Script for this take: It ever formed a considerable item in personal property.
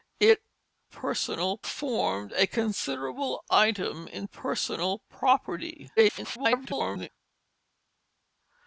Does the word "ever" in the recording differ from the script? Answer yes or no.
yes